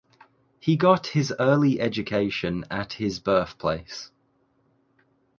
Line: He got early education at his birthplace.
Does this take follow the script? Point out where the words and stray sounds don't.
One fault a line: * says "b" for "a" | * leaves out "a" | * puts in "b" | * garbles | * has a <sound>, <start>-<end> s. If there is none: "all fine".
* puts in "his"